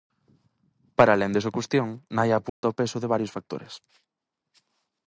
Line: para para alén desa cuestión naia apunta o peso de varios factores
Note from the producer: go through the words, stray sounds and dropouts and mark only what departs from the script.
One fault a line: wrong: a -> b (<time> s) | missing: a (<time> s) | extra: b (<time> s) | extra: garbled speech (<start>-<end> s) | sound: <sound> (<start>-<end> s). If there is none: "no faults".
missing: para (1.1 s)
sound: dropout (2.5-2.6 s)